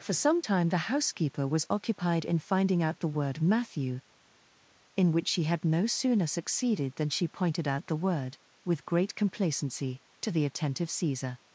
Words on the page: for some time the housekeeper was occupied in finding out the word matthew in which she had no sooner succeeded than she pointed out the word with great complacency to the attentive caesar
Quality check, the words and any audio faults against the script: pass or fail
pass